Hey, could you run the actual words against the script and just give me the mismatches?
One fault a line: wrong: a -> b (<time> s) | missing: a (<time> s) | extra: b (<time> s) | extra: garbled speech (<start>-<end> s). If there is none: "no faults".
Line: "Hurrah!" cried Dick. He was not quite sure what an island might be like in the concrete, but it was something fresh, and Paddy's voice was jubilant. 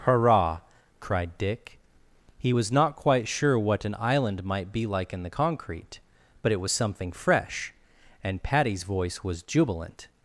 no faults